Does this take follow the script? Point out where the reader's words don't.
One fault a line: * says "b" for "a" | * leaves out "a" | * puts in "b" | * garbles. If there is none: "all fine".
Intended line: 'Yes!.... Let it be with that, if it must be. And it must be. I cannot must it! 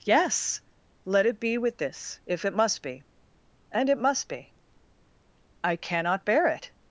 * says "this" for "that"
* says "bear" for "must"